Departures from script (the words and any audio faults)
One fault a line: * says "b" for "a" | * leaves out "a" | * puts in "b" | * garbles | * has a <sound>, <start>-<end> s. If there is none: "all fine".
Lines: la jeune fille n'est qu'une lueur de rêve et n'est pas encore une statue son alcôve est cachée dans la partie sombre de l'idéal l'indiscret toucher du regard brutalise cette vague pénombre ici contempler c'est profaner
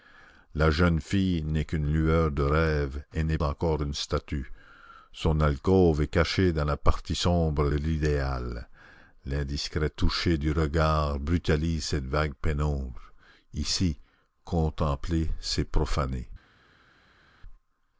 * leaves out "pas"
* leaves out "de"